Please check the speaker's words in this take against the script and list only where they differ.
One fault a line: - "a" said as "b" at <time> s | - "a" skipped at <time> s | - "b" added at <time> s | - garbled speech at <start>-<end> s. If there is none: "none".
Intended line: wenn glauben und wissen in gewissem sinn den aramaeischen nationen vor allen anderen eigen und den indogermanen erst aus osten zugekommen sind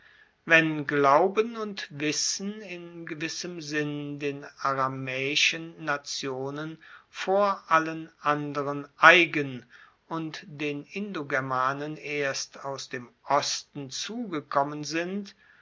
- "dem" added at 12.9 s